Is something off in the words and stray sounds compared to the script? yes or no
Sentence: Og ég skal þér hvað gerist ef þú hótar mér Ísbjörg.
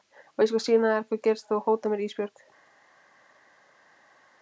yes